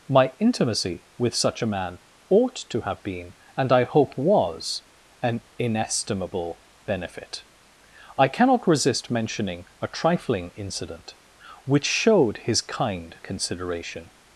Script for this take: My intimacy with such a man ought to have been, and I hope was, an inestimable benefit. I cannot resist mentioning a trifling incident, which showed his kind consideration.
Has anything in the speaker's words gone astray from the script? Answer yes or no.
no